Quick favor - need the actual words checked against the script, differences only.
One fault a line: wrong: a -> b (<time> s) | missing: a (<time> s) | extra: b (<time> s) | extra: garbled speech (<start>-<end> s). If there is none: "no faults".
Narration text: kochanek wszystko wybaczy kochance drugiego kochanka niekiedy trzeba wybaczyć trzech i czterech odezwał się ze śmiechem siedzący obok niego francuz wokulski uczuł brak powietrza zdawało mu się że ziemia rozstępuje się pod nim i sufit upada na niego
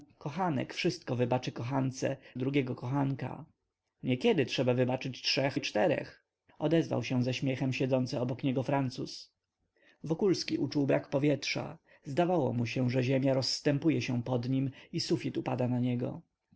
no faults